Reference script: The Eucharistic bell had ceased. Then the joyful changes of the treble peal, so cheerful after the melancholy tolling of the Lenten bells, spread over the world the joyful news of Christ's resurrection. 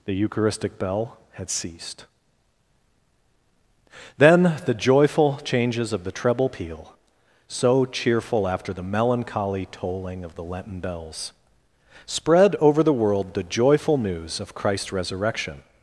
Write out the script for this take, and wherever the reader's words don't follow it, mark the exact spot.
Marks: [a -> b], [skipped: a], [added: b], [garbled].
The Eucharistic bell had ceased. Then the joyful changes of the treble peal, so cheerful after the melancholy tolling of the Lenten bells, spread over the world the joyful news of Christ's resurrection.